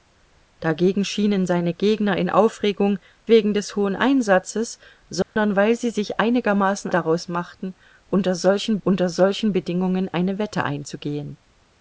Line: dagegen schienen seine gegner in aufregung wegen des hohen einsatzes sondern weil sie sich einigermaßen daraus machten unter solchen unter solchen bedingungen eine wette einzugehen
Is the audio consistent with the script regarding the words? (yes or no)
yes